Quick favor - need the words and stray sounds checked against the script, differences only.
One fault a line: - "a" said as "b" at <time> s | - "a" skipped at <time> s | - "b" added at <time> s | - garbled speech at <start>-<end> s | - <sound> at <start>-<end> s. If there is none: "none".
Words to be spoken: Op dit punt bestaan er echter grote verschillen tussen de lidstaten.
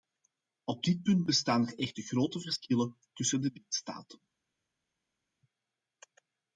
none